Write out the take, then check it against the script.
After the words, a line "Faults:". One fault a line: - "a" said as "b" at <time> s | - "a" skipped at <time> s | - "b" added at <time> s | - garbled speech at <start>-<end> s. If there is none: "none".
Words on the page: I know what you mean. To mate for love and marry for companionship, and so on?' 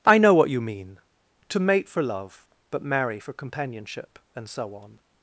I know what you mean. To mate for love but marry for companionship, and so on?'
Faults:
- "and" said as "but" at 2.7 s